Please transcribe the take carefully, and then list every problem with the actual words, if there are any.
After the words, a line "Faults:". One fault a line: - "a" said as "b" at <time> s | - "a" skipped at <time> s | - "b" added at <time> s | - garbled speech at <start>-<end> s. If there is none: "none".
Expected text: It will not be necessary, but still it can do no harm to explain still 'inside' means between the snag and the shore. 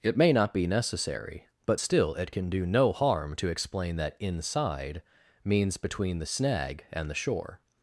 It may not be necessary, but still it can do no harm to explain that 'inside' means between the snag and the shore.
Faults:
- "will" said as "may" at 0.2 s
- "still" said as "that" at 4.0 s